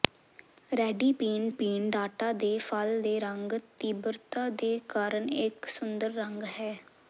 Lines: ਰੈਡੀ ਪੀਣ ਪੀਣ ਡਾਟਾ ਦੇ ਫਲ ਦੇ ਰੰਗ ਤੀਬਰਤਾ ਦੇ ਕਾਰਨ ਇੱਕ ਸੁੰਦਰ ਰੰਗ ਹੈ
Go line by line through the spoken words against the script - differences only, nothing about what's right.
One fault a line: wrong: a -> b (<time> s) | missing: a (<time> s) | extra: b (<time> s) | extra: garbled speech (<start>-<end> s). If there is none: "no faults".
no faults